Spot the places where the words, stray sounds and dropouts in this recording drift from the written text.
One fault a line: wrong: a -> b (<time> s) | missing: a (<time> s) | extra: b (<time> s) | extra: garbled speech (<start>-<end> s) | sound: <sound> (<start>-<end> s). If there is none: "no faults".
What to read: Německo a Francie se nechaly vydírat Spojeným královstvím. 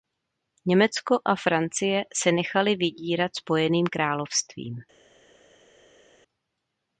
no faults